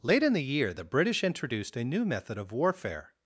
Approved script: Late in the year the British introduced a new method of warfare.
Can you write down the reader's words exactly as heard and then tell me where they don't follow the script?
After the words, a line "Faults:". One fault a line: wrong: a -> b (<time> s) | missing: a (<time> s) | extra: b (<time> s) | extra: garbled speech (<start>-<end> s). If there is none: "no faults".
Late in the year the British introduced a new method of warfare.
Faults:
no faults